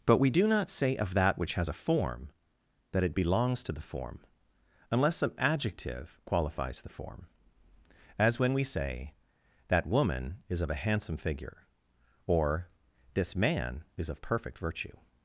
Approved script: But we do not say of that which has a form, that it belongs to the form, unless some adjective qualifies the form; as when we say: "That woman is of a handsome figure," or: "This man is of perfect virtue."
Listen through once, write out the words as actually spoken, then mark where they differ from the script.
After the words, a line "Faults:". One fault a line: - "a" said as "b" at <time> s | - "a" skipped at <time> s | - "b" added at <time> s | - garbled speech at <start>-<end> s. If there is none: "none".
But we do not say of that which has a form, that it belongs to the form, unless some adjective qualifies the form; as when we say: "That woman is of a handsome figure," or: "This man is of perfect virtue."
Faults:
none